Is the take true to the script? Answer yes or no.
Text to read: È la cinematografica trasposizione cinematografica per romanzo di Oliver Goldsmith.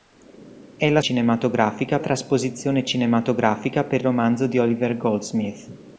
yes